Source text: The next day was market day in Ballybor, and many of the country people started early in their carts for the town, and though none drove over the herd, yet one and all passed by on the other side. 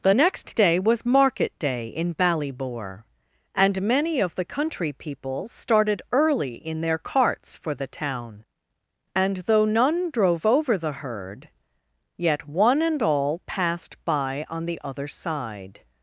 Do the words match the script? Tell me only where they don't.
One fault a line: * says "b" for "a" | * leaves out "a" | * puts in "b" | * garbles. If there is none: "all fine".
all fine